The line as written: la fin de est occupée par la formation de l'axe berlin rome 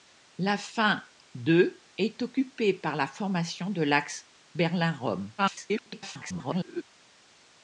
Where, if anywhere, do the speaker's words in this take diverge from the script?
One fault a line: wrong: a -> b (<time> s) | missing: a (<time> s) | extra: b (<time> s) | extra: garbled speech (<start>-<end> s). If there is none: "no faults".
extra: garbled speech (5.4-6.8 s)